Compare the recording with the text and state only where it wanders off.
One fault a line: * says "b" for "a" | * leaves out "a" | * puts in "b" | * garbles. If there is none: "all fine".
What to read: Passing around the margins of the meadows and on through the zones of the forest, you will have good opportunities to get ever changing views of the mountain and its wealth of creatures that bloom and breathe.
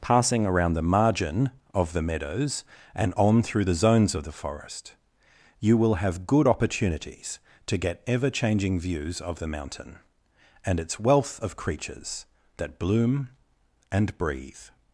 * says "margin" for "margins"